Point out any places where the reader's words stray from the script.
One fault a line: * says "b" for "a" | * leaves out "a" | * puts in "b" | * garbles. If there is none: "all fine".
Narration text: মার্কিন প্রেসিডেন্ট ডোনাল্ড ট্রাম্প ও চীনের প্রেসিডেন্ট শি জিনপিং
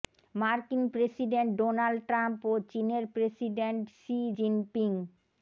all fine